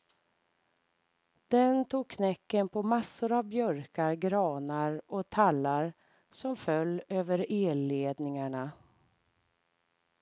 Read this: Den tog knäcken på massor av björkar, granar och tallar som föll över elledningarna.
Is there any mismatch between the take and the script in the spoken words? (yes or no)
no